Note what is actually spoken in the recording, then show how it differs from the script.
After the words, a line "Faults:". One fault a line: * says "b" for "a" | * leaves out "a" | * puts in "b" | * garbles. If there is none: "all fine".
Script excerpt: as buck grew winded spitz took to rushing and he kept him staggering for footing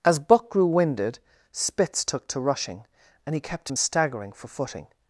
as buck grew winded spitz took to rushing and he kept him staggering for footing
Faults:
all fine